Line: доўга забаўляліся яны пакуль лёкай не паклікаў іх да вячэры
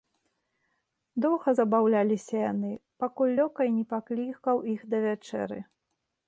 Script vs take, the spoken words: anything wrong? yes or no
no